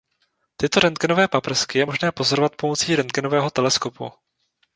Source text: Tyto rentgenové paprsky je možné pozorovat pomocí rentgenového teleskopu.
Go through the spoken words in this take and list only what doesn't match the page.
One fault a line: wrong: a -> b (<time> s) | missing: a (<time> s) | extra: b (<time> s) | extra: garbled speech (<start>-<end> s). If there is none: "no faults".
no faults